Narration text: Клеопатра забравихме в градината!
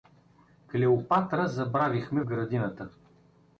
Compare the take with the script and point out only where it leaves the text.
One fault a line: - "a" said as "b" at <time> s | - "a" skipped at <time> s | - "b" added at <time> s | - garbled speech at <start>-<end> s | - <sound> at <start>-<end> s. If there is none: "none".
- "в" skipped at 2.2 s